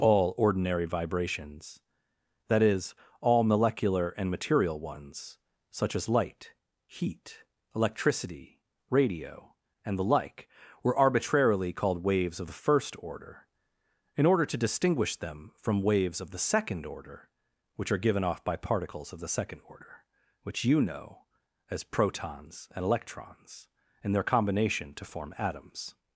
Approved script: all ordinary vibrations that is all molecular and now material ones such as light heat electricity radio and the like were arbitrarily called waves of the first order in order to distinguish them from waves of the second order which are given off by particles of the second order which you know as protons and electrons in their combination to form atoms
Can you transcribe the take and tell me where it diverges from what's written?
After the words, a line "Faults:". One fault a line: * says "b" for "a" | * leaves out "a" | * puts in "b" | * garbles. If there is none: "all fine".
all ordinary vibrations that is all molecular and material ones such as light heat electricity radio and the like were arbitrarily called waves of the first order in order to distinguish them from waves of the second order which are given off by particles of the second order which you know as protons and electrons in their combination to form atoms
Faults:
* leaves out "now"